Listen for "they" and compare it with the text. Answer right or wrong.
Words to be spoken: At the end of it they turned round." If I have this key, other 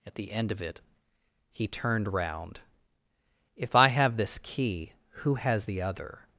wrong